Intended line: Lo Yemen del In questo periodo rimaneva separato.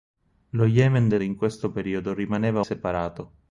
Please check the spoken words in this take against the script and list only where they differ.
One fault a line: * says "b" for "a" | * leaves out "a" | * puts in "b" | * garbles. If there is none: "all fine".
all fine